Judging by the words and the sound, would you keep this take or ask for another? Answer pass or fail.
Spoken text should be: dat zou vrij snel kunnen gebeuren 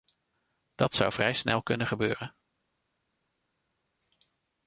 pass